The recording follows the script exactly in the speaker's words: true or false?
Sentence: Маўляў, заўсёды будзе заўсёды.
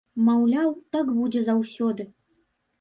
false